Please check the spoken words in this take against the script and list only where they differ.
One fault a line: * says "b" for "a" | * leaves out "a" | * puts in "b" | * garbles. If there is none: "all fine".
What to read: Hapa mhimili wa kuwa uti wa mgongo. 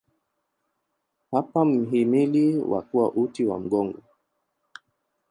all fine